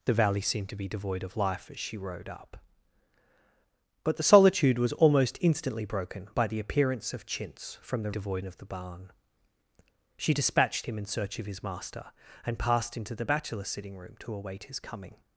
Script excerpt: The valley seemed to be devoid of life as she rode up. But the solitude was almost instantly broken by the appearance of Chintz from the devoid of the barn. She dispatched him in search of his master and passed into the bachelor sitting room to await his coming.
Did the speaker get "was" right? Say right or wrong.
right